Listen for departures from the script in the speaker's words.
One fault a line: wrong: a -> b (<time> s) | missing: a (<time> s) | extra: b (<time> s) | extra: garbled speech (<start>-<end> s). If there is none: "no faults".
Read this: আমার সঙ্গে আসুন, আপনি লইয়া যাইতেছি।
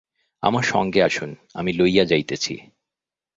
wrong: আপনি -> আমি (1.5 s)